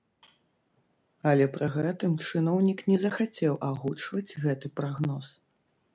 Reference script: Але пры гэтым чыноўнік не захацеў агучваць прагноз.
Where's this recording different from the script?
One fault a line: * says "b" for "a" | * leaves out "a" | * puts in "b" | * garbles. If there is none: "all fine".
* puts in "гэты"